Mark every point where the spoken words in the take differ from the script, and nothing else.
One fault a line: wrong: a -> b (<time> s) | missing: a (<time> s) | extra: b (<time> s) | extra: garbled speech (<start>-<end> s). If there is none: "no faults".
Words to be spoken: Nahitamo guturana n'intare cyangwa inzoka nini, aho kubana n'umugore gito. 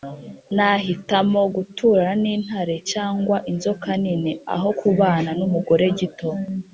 no faults